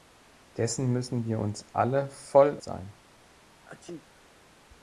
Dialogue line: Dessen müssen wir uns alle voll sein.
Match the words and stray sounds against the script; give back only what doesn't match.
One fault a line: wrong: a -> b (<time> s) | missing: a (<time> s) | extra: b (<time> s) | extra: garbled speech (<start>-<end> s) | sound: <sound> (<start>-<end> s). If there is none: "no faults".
sound: sneeze (3.5-4.3 s)